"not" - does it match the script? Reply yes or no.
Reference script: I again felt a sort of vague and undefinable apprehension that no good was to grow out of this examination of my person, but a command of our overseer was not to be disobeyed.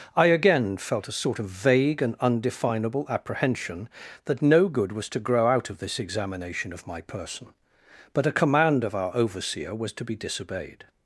no